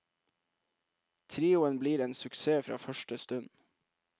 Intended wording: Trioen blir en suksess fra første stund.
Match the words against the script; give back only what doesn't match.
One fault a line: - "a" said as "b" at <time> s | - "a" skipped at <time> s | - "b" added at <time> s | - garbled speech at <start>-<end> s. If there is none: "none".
none